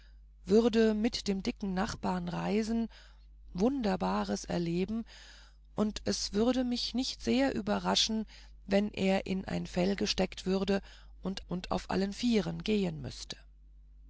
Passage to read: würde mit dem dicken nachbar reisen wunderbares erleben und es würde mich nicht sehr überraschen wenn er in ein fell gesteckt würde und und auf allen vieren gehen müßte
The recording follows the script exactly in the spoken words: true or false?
true